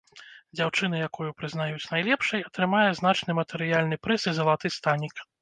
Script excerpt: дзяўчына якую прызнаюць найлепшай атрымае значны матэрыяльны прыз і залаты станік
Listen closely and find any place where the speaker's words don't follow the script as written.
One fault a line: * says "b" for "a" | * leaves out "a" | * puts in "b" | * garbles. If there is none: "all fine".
all fine